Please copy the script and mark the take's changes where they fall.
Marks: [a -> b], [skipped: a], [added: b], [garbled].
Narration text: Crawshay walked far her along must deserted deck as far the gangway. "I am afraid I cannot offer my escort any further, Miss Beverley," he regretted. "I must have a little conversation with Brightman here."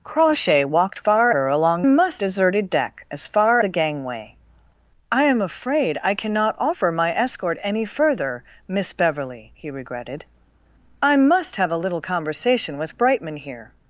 Crawshay walked far her along must deserted deck as far the gangway. "I am afraid I cannot offer my escort any further, Miss Beverley," he regretted. "I must have a little conversation with Brightman here."